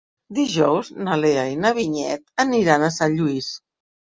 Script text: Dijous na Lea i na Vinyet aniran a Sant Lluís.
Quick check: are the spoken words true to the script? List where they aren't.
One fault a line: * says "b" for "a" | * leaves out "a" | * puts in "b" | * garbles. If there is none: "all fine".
all fine